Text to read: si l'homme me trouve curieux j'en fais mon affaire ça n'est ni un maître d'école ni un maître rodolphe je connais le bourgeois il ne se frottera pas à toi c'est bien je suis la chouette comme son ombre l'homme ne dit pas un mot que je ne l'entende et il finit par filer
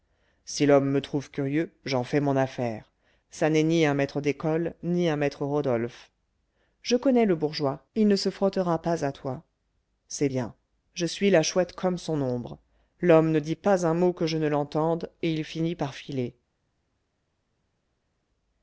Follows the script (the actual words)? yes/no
yes